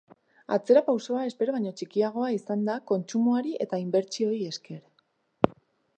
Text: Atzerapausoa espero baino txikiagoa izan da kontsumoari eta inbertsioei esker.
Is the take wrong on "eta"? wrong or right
right